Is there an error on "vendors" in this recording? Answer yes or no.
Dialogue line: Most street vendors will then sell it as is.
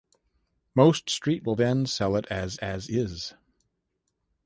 yes